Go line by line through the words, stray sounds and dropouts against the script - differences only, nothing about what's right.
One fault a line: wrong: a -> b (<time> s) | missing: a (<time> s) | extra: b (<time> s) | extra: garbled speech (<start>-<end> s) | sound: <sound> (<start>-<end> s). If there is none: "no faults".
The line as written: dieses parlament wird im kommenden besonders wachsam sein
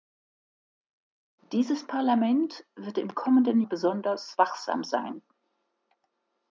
no faults